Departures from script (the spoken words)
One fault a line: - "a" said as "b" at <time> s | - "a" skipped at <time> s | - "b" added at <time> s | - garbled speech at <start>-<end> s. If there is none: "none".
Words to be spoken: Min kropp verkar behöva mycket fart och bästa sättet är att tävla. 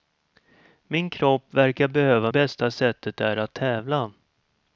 - "mycket fart och" skipped at 2.3 s